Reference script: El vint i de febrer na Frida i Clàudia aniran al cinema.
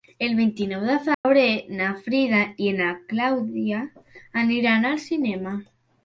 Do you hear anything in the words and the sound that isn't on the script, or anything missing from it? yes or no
yes